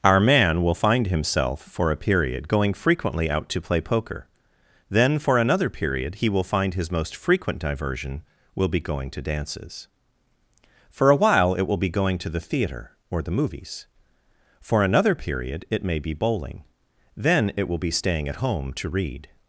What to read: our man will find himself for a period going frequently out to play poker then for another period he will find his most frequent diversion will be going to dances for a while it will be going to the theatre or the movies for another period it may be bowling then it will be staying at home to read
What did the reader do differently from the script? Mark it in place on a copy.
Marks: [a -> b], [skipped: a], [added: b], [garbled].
our man will find himself for a period going frequently out to play poker then for another period he will find his most frequent diversion will be going to dances for a while it will be going to the theatre or the movies for another period it may be bowling then it will be staying at home to read